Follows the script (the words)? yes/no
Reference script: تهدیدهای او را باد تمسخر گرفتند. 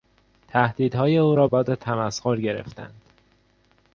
yes